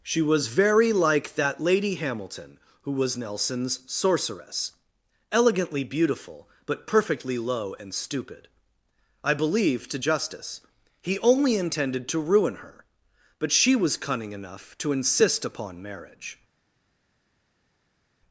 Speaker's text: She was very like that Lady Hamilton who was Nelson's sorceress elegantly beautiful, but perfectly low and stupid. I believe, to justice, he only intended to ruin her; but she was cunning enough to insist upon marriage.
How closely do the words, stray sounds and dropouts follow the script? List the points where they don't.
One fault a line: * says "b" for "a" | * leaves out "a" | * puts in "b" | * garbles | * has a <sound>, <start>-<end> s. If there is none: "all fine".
all fine